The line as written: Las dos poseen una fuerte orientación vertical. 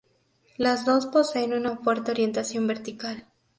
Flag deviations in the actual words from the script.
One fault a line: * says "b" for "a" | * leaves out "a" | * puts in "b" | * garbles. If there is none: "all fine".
all fine